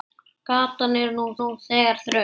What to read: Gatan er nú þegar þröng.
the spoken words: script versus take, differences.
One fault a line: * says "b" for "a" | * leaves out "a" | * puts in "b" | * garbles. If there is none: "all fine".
* puts in "nú"